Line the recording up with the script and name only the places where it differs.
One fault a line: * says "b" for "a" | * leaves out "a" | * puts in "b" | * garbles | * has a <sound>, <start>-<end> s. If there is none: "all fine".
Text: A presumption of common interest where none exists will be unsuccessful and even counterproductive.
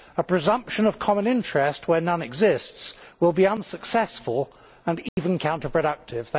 * has a dropout, 5.1-5.2 s